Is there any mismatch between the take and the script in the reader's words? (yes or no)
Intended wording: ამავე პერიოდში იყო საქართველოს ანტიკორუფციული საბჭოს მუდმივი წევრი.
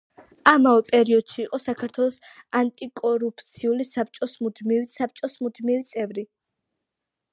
yes